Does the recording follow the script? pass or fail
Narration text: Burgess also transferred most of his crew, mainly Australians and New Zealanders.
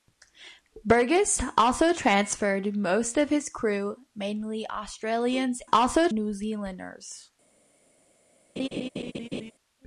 fail